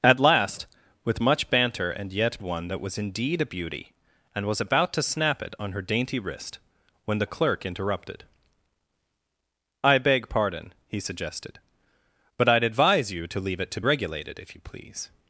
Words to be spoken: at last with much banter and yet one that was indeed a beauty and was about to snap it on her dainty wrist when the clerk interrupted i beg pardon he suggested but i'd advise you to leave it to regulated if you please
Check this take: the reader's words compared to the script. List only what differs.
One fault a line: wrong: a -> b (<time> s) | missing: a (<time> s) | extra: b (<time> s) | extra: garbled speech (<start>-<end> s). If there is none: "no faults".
no faults